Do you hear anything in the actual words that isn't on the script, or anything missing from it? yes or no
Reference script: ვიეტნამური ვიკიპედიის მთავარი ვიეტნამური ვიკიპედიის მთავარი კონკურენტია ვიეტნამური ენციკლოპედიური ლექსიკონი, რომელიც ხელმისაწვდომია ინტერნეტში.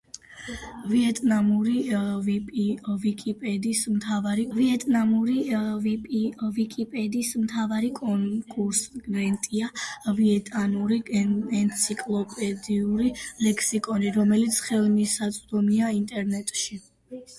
no